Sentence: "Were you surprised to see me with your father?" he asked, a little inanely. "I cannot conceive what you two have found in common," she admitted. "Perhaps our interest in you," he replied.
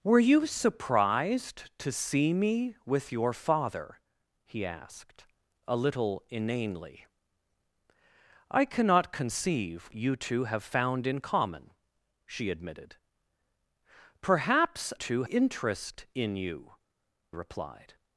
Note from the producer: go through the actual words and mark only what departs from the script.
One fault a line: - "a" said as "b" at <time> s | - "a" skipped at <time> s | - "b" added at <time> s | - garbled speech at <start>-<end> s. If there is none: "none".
- "what" skipped at 9.9 s
- "our" said as "two" at 15.0 s
- "he" skipped at 16.7 s